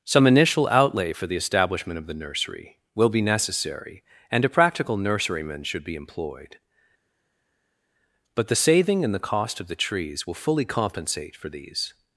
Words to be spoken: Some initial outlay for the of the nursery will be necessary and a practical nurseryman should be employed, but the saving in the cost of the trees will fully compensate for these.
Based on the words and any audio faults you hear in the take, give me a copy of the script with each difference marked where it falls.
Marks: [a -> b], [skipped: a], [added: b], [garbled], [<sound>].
Some initial outlay for the [added: establishment] of the nursery will be necessary and a practical nurseryman should be employed, but the saving in the cost of the trees will fully compensate for these.